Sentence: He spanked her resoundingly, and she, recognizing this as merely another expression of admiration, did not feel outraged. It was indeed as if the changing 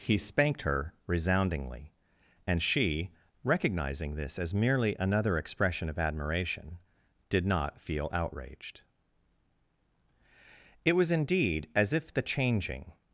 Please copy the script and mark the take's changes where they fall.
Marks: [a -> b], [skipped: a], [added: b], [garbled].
He spanked her resoundingly, and she, recognizing this as merely another expression of admiration, did not feel outraged. It was indeed as if the changing